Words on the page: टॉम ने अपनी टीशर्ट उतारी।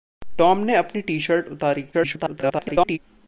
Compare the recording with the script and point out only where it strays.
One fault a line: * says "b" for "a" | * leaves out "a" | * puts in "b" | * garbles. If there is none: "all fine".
* garbles